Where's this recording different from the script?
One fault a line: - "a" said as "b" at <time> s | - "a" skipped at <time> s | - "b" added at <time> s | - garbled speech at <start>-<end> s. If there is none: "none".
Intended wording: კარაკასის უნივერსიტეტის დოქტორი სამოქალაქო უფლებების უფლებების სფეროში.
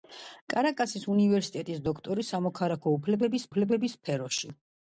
none